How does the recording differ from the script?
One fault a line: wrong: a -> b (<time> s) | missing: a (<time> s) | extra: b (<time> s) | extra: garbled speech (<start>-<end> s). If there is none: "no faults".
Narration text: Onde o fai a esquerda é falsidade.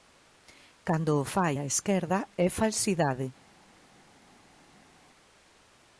wrong: Onde -> Cando (0.9 s)